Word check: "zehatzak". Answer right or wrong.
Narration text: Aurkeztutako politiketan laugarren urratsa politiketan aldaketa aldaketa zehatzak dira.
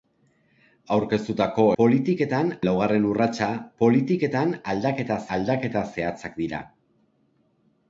right